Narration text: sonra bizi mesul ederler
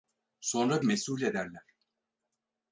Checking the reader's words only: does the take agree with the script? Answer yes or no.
no